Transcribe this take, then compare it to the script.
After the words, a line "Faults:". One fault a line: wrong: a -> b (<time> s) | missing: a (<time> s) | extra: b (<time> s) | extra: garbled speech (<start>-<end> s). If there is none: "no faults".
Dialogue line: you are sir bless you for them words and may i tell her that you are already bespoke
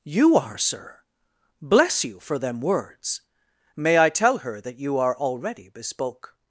you are sir bless you for them words may i tell her that you are already bespoke
Faults:
missing: and (3.2 s)